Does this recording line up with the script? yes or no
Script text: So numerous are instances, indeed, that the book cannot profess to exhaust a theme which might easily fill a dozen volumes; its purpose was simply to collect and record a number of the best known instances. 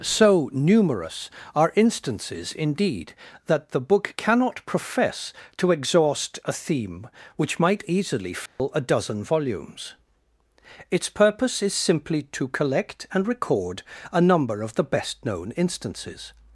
no